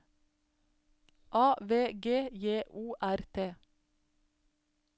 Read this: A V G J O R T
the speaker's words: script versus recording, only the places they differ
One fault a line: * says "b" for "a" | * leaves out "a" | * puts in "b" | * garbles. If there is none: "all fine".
all fine